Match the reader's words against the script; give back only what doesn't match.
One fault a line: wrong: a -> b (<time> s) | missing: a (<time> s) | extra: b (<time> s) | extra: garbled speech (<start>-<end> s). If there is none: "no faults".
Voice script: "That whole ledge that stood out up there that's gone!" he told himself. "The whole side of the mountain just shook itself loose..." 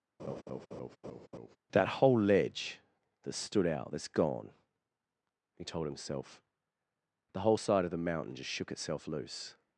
missing: up there (3.9 s)